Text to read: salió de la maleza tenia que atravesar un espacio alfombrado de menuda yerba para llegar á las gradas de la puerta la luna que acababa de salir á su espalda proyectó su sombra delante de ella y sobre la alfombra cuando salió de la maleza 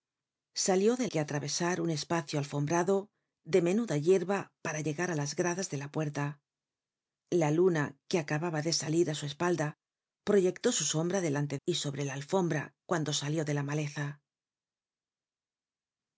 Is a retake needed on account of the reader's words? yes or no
yes